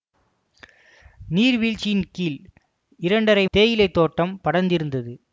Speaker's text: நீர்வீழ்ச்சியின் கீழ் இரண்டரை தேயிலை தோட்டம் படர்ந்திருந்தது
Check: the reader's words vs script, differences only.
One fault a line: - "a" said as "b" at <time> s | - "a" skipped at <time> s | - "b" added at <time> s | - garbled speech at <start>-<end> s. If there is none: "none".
none